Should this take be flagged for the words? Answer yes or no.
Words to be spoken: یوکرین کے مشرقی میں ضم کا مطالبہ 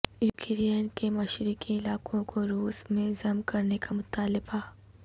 yes